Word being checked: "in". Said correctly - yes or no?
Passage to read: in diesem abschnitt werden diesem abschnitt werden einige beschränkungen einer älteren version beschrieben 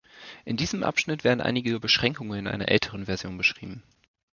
yes